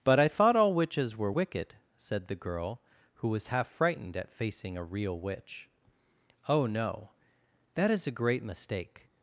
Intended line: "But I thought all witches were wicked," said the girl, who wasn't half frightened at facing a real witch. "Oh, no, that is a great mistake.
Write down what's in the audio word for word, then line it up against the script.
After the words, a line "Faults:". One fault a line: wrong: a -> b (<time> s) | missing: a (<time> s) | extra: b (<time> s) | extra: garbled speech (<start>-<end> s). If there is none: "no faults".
"But I thought all witches were wicked," said the girl, who was half frightened at facing a real witch. "Oh, no, that is a great mistake.
Faults:
wrong: wasn't -> was (3.3 s)